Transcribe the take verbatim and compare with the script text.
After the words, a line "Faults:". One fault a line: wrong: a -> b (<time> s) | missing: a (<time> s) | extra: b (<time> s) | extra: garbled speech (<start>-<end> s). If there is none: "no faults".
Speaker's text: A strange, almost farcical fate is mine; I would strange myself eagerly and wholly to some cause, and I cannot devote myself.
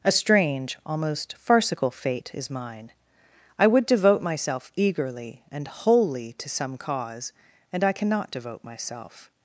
A strange, almost farcical fate is mine; I would devote myself eagerly and wholly to some cause, and I cannot devote myself.
Faults:
wrong: strange -> devote (3.9 s)